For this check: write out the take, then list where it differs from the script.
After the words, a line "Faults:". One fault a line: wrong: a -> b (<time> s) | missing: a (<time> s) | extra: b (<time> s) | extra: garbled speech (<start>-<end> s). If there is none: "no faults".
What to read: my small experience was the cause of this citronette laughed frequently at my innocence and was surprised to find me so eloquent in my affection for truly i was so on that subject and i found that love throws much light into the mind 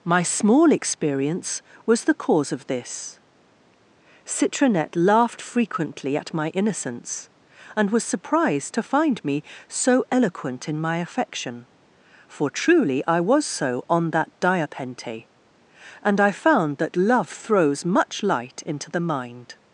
my small experience was the cause of this citronette laughed frequently at my innocence and was surprised to find me so eloquent in my affection for truly i was so on that diapente and i found that love throws much light into the mind
Faults:
wrong: subject -> diapente (14.4 s)